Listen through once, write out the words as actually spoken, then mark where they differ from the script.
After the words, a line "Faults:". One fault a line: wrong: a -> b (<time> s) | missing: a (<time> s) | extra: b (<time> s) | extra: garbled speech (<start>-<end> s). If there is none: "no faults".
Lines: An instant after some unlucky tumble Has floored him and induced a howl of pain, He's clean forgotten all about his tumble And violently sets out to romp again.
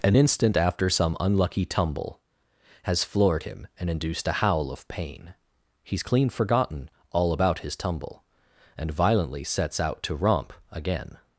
An instant after some unlucky tumble Has floored him and induced a howl of pain, He's clean forgotten all about his tumble And violently sets out to romp again.
Faults:
no faults